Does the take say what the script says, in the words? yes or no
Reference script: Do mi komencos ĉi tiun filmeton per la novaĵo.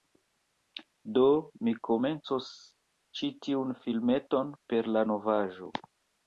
yes